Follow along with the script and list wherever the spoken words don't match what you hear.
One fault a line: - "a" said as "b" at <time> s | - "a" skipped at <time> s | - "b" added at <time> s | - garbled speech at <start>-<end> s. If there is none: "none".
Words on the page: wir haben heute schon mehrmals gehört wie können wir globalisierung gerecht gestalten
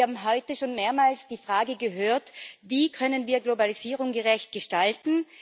- "die frage" added at 1.3 s